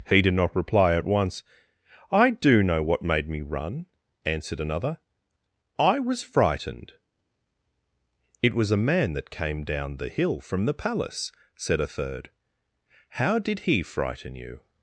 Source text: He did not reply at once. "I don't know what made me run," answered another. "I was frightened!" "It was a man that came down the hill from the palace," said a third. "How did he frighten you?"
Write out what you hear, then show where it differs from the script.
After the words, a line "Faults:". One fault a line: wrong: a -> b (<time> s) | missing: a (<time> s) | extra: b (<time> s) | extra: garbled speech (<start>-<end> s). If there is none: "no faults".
He did not reply at once. "I do know what made me run," answered another. "I was frightened!" "It was a man that came down the hill from the palace," said a third. "How did he frighten you?"
Faults:
wrong: don't -> do (2.3 s)